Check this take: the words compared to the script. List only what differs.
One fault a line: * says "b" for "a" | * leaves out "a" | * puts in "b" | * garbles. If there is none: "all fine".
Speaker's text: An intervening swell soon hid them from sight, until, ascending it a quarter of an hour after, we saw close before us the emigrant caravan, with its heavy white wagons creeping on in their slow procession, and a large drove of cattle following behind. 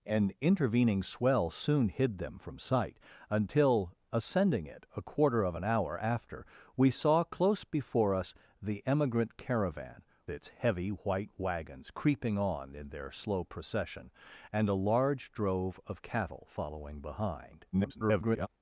* leaves out "with"
* garbles